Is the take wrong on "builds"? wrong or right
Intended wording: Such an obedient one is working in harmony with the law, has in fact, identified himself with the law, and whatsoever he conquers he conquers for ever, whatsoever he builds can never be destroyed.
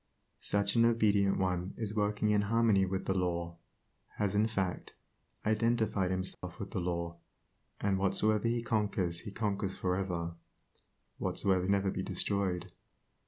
wrong